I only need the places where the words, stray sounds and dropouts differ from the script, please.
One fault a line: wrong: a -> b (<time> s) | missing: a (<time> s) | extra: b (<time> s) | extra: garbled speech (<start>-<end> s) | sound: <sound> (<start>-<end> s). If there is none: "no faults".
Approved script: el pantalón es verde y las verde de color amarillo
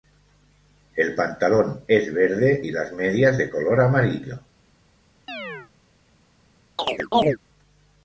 wrong: verde -> medias (2.9 s)
sound: chirp (5.3-5.7 s)
sound: chirp (6.8-7.4 s)